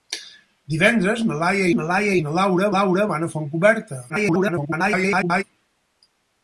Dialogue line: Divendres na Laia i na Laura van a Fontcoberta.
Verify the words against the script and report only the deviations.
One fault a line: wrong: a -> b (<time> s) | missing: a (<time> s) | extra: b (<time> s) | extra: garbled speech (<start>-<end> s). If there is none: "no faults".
extra: na Laia (1.8 s)
extra: Laura (2.8 s)
extra: garbled speech (4.1-5.4 s)